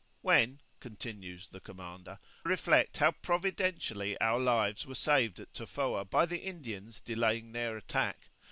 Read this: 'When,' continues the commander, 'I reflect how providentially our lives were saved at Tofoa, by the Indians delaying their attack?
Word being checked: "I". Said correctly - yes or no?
no